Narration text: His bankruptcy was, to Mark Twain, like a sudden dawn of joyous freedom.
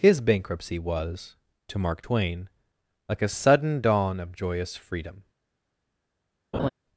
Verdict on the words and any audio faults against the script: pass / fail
fail